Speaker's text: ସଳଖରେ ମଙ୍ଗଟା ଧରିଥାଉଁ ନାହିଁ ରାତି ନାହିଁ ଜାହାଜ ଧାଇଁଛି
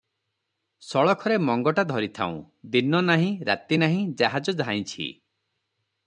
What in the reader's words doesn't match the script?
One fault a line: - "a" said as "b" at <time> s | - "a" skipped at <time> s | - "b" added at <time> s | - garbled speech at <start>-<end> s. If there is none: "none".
- "ଦିନ" added at 2.7 s